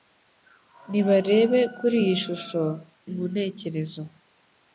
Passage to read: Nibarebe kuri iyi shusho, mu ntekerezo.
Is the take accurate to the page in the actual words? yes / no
yes